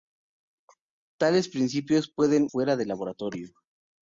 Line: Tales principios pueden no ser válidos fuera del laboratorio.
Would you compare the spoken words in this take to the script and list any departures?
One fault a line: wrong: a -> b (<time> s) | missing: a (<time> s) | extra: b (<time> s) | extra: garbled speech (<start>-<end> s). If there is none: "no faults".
missing: no ser válidos (2.5 s)